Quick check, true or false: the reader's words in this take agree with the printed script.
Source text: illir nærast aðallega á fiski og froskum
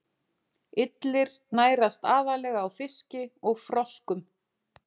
true